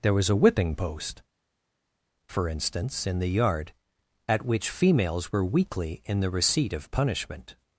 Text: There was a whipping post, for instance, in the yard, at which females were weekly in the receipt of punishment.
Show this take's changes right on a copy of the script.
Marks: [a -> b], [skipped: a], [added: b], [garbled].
There was a whipping post, for instance, in the yard, at which females were weekly in the receipt of punishment.